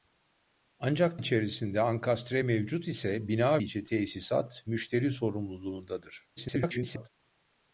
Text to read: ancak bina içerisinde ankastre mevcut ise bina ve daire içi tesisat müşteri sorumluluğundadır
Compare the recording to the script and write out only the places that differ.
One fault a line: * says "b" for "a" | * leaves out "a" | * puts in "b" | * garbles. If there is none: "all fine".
* leaves out "bina"
* leaves out "ve daire"
* garbles